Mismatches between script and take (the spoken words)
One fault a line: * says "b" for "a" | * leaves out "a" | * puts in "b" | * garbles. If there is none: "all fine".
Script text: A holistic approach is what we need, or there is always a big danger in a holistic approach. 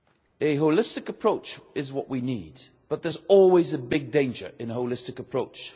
* says "but" for "or"